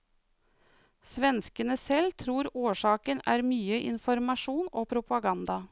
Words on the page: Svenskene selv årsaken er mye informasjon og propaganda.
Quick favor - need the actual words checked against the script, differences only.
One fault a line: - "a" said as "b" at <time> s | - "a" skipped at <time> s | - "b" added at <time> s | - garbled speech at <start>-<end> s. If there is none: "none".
- "tror" added at 2.2 s